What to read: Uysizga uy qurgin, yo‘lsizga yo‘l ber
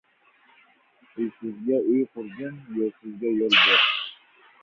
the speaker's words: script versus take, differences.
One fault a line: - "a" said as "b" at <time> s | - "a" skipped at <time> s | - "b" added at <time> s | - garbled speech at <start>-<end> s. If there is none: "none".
none